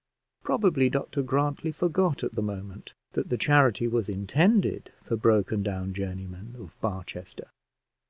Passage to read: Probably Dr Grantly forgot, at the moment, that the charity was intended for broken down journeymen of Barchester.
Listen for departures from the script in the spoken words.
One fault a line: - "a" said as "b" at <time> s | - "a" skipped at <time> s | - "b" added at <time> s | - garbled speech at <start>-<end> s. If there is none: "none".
none